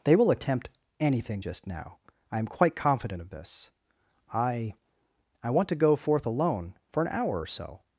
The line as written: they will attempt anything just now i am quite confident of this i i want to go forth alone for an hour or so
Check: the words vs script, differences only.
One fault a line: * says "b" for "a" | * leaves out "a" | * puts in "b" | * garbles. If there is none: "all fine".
all fine